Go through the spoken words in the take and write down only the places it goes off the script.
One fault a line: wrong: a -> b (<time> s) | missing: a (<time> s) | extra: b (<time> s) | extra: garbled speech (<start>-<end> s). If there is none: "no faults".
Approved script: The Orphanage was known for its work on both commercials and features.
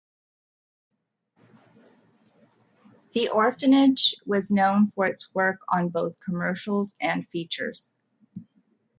no faults